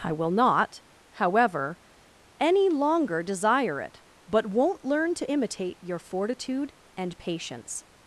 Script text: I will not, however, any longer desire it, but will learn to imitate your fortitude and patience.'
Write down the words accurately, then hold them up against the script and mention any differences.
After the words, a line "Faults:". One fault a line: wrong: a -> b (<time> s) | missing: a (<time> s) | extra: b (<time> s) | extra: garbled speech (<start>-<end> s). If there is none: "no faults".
I will not, however, any longer desire it, but won't learn to imitate your fortitude and patience.'
Faults:
wrong: will -> won't (4.5 s)